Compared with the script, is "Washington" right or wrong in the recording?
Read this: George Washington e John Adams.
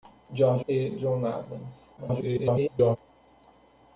wrong